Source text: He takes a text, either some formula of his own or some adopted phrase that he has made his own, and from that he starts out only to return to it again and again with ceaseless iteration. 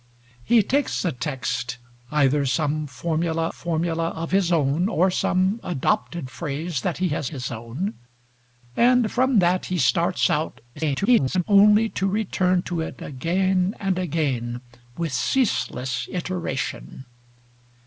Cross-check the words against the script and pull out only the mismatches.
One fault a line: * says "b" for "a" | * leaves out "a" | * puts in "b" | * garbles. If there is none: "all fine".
* puts in "formula"
* leaves out "made"
* garbles